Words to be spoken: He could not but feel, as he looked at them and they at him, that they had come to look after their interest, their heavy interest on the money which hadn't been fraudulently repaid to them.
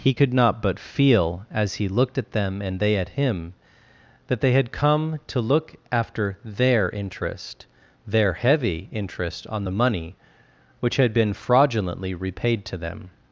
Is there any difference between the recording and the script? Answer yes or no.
yes